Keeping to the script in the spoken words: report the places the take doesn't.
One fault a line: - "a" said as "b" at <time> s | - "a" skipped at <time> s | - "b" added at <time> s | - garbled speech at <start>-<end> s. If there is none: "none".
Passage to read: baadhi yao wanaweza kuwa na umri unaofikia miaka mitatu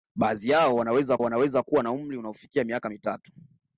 - "wanaweza" added at 1.2 s